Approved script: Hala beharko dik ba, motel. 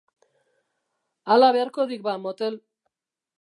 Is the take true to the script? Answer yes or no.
yes